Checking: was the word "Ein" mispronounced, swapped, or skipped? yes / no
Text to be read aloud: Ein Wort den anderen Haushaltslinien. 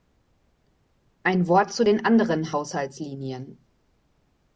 no